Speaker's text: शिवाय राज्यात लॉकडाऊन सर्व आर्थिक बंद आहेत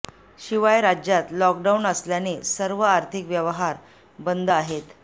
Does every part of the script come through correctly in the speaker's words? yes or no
no